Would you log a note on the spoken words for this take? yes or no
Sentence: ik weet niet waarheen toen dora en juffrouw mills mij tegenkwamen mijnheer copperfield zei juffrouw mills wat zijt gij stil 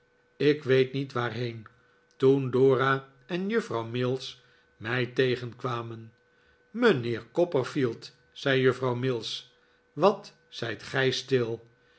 no